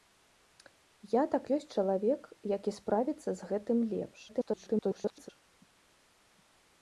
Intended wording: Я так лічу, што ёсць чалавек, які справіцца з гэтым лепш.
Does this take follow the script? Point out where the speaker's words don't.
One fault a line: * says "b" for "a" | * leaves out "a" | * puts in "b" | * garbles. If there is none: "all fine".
* leaves out "лічу што"
* garbles